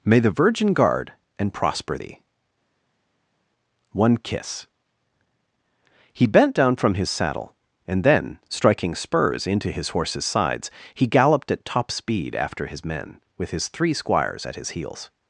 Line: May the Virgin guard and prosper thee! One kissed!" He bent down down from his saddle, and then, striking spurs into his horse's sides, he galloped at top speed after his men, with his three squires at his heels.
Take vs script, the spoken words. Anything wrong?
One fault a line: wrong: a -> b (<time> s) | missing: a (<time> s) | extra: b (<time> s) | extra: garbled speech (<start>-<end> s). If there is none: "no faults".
wrong: kissed -> kiss (4.2 s)
missing: down (6.8 s)